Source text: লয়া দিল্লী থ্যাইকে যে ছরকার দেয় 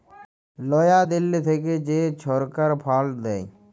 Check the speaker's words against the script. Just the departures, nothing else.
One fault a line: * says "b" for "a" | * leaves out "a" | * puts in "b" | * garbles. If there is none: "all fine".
* puts in "ফাল্ড"